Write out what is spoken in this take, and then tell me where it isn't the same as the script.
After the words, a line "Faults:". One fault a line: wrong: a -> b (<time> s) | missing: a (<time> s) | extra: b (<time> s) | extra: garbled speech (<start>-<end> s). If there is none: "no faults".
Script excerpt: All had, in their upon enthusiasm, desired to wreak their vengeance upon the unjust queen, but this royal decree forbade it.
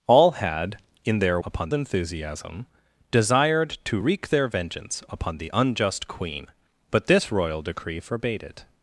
All had, in their upon enthusiasm, desired to wreak their vengeance upon the unjust queen, but this royal decree forbade it.
Faults:
no faults